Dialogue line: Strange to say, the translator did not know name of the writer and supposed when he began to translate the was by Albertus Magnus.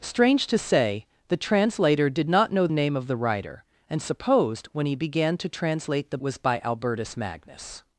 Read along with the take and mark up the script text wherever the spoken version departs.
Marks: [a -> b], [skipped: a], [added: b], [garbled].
Strange to say, the translator did not know name of the writer and supposed when he began to translate the was by Albertus Magnus.